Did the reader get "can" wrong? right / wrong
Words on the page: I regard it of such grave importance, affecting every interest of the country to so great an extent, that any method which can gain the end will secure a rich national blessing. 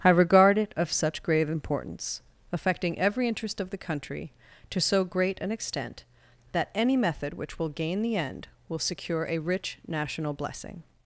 wrong